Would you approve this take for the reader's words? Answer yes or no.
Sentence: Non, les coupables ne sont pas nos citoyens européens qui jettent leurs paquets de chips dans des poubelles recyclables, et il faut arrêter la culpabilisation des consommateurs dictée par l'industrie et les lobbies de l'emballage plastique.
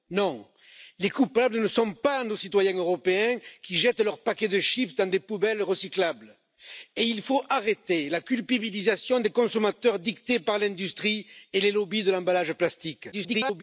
no